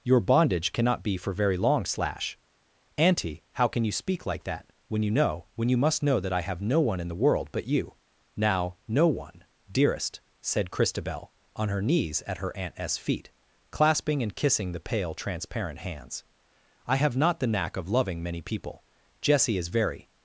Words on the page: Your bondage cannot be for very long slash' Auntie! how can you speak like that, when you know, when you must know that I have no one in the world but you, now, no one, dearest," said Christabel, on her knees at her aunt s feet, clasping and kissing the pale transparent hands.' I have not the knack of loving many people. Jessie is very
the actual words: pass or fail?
pass